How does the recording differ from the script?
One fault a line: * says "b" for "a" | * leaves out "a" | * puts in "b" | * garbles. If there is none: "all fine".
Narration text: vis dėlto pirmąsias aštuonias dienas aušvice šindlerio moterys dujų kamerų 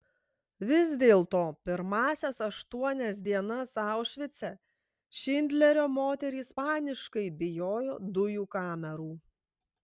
* puts in "paniškai bijojo"